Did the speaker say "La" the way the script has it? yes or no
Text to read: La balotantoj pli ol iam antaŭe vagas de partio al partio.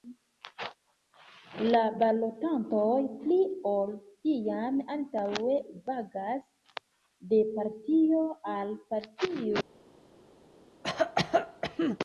yes